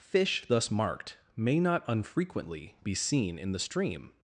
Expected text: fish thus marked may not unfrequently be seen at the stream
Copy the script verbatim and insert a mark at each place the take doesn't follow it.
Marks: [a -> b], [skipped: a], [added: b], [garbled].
fish thus marked may not unfrequently be seen [at -> in] the stream